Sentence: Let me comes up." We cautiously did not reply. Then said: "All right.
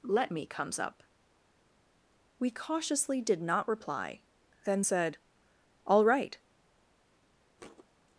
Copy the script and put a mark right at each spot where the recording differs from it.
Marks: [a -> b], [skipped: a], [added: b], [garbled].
Let me comes up." We cautiously did not reply. Then said: "All right.